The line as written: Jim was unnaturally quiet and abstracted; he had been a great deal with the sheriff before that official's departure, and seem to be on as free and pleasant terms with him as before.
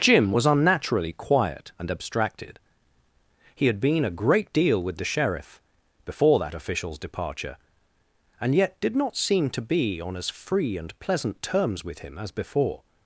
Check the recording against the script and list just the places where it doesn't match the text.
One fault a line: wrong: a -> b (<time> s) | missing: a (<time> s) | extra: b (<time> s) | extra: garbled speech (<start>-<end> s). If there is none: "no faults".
extra: yet did not (8.6 s)